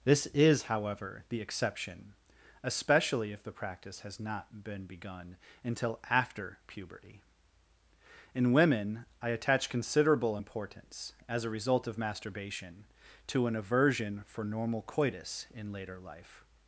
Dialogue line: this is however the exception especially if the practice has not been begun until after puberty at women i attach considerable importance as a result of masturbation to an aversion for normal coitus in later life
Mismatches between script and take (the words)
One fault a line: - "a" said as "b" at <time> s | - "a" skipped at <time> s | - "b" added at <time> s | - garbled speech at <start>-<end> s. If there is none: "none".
- "at" said as "in" at 8.3 s